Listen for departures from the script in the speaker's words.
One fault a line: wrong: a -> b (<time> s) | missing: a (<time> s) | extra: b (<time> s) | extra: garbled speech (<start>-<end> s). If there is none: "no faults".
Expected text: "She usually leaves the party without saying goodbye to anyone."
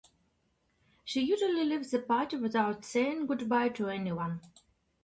no faults